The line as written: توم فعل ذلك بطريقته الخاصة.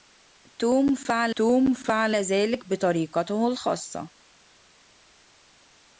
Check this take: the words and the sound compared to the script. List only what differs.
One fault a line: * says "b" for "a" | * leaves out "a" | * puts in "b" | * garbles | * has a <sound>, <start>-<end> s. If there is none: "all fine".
* puts in "توم فعل"